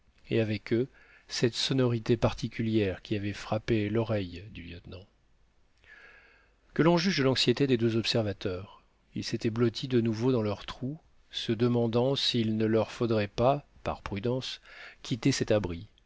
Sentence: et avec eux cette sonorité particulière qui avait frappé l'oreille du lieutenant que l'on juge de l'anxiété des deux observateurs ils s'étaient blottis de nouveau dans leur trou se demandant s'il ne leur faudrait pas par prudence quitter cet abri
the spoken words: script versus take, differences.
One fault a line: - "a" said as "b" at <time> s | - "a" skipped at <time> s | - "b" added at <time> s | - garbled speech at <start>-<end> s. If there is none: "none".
none